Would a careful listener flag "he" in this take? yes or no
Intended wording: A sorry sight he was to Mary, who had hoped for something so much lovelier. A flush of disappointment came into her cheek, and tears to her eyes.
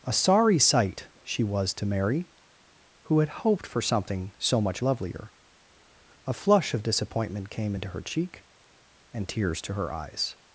yes